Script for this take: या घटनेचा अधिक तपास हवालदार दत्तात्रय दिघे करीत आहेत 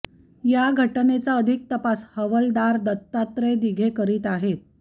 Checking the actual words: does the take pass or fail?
pass